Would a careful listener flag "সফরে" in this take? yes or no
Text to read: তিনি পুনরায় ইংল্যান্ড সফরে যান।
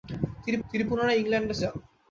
yes